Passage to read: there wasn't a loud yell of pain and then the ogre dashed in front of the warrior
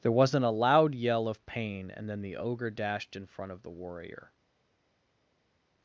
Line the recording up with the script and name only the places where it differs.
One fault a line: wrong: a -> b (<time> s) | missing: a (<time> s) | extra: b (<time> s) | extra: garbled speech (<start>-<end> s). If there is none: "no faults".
no faults